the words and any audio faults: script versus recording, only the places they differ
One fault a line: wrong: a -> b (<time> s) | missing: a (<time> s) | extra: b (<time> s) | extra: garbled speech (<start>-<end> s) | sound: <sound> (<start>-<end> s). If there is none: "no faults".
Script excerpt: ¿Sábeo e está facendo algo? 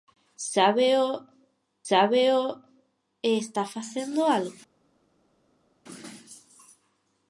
extra: sábeo (1.9 s)